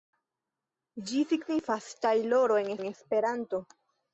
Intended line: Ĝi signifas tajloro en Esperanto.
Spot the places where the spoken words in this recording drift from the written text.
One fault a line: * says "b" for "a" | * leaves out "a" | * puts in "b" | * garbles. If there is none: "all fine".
* puts in "en"